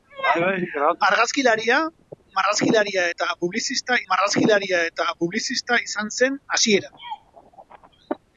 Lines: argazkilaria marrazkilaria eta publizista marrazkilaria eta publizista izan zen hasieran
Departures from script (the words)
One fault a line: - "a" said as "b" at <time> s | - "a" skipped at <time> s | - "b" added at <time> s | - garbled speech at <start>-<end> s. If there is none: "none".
none